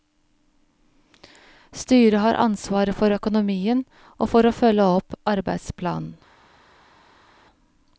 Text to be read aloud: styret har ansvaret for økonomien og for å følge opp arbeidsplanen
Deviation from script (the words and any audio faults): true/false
false